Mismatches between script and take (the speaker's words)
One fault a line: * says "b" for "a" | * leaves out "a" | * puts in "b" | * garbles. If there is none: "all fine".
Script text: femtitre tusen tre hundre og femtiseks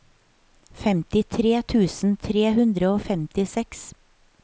all fine